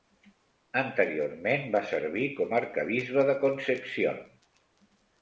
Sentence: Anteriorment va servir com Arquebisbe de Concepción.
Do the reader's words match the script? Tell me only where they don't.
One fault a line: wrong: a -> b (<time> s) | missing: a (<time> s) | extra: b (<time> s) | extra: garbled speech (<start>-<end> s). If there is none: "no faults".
no faults